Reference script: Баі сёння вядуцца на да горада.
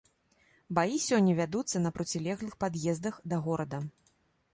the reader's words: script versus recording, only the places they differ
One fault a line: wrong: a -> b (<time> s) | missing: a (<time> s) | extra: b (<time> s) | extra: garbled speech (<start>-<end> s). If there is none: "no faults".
extra: процілеглых пад'ездах (2.0 s)